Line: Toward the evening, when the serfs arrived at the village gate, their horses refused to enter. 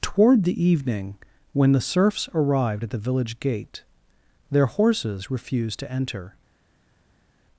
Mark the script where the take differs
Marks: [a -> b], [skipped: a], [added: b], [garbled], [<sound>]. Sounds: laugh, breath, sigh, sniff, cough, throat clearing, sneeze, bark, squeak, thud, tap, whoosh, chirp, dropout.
Toward the evening, when the serfs arrived at the village gate, their horses refused to enter.